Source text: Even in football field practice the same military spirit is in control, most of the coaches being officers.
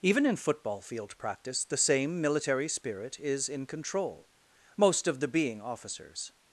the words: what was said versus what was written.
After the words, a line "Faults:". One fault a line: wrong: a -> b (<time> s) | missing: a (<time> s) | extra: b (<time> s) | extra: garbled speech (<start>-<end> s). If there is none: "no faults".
Even in football field practice the same military spirit is in control, most of the being officers.
Faults:
missing: coaches (5.3 s)